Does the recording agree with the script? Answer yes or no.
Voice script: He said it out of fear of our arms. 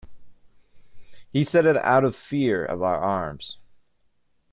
yes